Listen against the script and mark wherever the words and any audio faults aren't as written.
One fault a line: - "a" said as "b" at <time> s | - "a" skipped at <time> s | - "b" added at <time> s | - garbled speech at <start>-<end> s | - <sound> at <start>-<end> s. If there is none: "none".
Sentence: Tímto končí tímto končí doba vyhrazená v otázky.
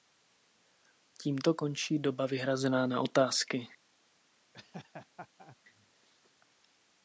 - "tímto končí" skipped at 2.0 s
- "v" said as "na" at 2.9 s
- laugh at 4.5-5.6 s